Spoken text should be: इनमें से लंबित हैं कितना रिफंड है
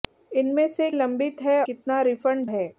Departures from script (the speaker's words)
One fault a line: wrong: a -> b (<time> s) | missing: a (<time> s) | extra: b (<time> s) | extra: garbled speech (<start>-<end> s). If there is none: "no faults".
no faults